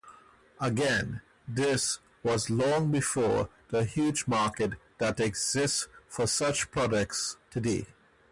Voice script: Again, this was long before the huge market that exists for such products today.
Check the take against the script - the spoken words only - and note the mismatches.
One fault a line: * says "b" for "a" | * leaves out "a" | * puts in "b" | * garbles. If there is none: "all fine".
all fine